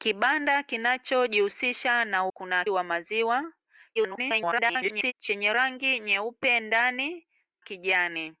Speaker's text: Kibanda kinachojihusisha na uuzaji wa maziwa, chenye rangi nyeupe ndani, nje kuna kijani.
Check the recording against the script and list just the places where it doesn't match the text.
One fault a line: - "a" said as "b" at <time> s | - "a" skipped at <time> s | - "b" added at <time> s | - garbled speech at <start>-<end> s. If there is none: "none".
- "uuzaji" said as "kuna" at 2.3 s
- garbled speech at 4.0-5.1 s
- "nje kuna" skipped at 7.3 s